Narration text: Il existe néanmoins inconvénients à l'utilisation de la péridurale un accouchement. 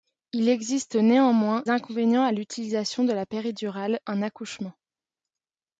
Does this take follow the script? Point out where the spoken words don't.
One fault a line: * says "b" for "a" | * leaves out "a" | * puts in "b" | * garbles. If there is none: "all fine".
all fine